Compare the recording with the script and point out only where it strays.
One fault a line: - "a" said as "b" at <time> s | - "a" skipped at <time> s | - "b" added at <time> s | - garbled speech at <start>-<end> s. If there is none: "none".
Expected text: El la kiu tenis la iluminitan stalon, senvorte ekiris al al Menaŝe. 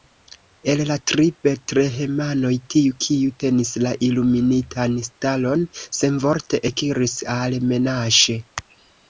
- "tri betlehemanoj tiu" added at 1.1 s
- "al" skipped at 7.6 s